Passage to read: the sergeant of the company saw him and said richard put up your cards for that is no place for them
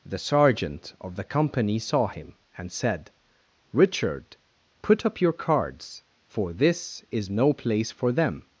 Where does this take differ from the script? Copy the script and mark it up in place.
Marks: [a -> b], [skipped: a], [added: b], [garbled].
the sergeant of the company saw him and said richard put up your cards for [that -> this] is no place for them